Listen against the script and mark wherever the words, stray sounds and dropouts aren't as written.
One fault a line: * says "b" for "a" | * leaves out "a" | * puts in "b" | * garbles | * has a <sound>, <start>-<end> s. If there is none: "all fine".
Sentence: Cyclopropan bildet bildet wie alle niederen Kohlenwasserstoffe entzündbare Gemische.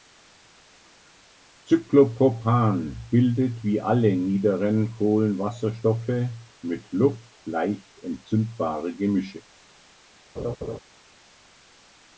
* leaves out "bildet"
* puts in "mit Luft leicht"
* has a laugh, 10.4-10.8 s